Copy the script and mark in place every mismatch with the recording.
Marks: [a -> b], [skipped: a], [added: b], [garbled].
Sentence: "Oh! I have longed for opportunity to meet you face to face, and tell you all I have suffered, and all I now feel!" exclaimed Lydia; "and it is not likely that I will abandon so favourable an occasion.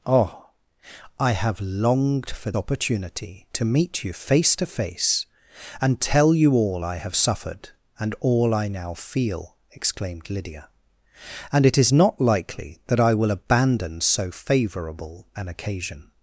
"Oh! I have longed for opportunity to meet you face to face, and tell you all I have suffered, and all I now feel!" exclaimed Lydia; "and it is not likely that I will abandon so favourable an occasion.